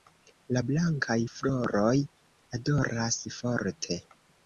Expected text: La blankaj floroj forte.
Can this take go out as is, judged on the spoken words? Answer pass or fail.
fail